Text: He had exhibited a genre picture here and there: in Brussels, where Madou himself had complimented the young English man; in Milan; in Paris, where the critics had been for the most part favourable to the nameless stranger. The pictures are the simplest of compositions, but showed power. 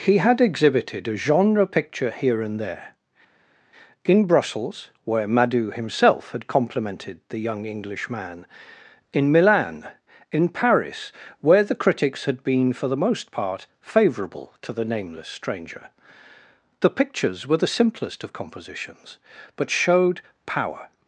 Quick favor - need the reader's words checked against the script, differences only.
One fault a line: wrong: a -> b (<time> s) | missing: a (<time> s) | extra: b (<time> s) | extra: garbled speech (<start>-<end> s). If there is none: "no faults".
wrong: are -> were (17.4 s)